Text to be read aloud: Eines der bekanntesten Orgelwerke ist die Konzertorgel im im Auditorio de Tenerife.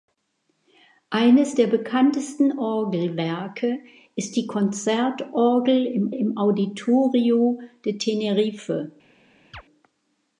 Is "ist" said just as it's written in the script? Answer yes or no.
yes